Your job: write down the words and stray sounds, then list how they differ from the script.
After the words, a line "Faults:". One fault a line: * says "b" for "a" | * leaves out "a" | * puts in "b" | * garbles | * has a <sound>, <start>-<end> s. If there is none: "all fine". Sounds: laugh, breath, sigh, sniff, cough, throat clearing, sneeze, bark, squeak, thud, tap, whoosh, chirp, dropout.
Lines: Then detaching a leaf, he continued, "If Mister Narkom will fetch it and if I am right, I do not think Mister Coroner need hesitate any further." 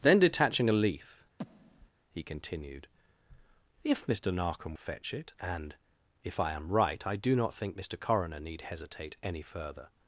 Then detaching a leaf, he continued, "If Mister Narkom fetch it and if I am right, I do not think Mister Coroner need hesitate any further."
Faults:
* has a breath, 1.4-1.9 s
* leaves out "will"